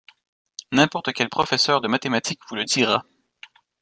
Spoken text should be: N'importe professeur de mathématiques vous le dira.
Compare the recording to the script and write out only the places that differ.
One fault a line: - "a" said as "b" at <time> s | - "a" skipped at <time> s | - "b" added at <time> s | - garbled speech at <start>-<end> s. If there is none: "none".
- "quel" added at 1.1 s